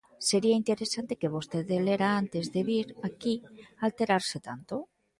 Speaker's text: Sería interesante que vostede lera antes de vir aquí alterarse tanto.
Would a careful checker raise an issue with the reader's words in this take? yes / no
no